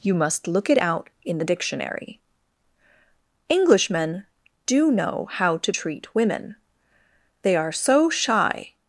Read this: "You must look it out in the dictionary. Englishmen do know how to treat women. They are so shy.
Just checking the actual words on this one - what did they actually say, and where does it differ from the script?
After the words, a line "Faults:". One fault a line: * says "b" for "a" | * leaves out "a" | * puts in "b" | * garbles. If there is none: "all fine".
"You must look it out in the dictionary. Englishmen do know how to treat women. They are so shy.
Faults:
all fine